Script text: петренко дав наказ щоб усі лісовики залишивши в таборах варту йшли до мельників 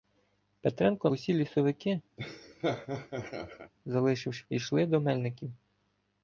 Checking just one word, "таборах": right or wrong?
wrong